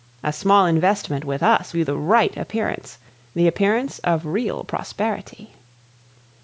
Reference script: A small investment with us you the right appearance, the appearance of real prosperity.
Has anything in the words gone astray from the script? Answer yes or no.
no